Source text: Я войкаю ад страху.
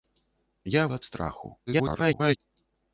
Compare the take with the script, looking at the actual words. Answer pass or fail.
fail